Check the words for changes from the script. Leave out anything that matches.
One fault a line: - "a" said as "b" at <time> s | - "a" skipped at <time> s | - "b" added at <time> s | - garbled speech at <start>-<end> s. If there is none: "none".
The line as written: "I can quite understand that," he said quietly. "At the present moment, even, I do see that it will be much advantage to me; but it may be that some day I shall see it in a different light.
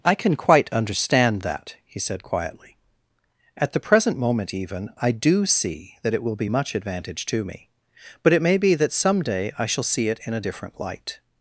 none